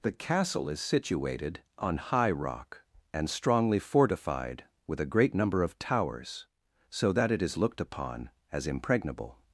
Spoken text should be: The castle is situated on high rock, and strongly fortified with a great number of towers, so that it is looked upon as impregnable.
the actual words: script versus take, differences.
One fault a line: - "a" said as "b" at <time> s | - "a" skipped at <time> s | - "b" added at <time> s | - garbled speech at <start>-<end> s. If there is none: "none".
none